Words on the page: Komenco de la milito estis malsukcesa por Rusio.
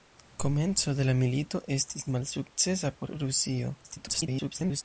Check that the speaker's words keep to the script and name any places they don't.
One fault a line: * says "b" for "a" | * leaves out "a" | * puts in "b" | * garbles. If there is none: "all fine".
* garbles